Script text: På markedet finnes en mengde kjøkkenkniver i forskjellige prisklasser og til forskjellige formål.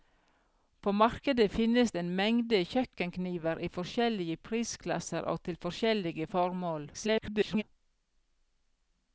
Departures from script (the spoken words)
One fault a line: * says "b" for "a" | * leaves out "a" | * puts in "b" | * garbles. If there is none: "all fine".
* garbles